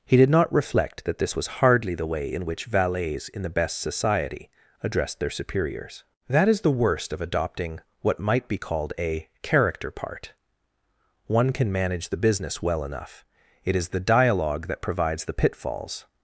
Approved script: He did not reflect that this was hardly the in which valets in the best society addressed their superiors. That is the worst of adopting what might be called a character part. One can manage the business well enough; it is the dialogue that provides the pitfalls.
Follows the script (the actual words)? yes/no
no